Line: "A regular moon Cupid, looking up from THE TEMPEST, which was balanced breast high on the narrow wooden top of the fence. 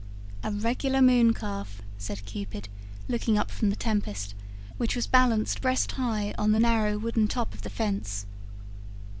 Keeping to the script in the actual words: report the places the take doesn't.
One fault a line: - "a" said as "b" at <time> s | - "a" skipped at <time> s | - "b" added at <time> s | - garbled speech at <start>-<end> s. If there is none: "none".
- "calf said" added at 1.3 s